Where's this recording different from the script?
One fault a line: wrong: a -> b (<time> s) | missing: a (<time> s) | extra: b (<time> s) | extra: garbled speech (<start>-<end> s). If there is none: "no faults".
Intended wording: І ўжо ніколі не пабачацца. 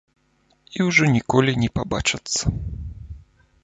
no faults